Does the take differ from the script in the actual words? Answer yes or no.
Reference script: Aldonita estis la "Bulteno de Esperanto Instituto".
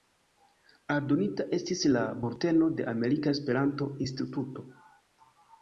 yes